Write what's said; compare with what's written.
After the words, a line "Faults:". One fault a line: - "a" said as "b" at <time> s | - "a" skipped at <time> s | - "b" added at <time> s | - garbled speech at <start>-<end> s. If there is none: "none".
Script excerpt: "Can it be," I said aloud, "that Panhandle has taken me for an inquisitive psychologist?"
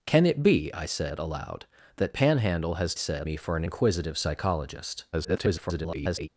"Can it be," I said aloud, "that Panhandle has said me for an inquisitive psychologist?" [garbled]
Faults:
- "taken" said as "said" at 2.9 s
- garbled speech at 5.1-6.3 s